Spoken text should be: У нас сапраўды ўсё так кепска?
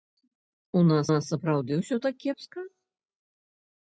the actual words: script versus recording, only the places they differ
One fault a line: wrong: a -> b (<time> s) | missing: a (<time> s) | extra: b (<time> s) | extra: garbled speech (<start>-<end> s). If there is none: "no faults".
extra: нас (1.1 s)